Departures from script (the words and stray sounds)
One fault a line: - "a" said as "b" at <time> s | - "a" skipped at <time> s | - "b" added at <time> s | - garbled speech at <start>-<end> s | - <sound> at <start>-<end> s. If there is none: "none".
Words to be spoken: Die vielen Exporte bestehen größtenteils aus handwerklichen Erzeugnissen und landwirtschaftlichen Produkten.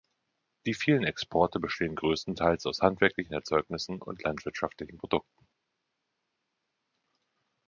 none